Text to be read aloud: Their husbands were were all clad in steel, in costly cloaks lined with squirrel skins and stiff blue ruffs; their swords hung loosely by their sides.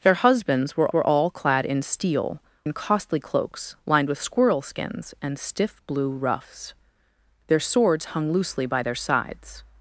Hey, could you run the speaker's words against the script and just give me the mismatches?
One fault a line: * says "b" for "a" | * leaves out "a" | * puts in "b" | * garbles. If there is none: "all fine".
all fine